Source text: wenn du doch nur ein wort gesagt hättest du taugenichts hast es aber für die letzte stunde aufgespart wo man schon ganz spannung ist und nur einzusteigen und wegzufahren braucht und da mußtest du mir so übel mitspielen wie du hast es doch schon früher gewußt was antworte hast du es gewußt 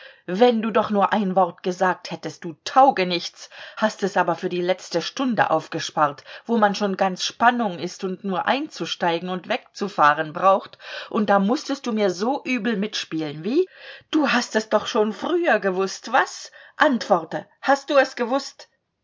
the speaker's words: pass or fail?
pass